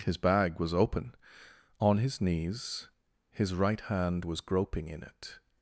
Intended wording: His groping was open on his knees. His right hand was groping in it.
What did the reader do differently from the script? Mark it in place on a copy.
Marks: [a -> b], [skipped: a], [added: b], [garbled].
His [groping -> bag] was open on his knees. His right hand was groping in it.